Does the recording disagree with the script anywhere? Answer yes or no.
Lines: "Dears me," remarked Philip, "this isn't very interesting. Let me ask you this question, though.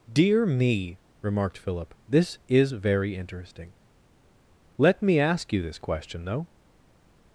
yes